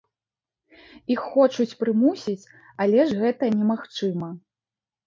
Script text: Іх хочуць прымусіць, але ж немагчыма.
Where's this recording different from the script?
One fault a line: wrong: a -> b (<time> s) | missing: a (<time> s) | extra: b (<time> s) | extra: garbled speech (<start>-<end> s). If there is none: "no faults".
extra: гэта (3.2 s)